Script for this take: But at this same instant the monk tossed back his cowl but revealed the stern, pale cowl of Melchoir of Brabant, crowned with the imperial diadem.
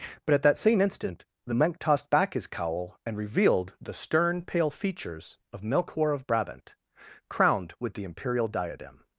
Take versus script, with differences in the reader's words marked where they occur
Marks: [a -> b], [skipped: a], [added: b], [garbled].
But at [this -> that] same instant the monk tossed back his cowl [but -> and] revealed the stern, pale [cowl -> features] of Melchoir of Brabant, crowned with the imperial diadem.